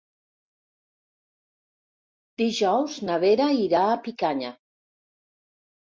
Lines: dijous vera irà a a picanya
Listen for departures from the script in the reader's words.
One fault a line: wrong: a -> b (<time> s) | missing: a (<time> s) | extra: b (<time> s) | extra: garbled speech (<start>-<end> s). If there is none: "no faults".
extra: na (3.1 s)
missing: a (4.0 s)